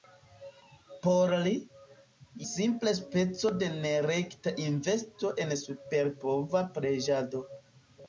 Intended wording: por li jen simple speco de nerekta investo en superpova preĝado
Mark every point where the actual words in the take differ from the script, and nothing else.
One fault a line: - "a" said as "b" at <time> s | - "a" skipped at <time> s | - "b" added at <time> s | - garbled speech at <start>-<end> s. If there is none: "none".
- "jen" skipped at 1.5 s